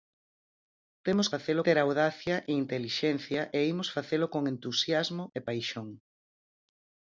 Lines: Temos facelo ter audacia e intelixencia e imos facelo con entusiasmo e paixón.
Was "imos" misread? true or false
false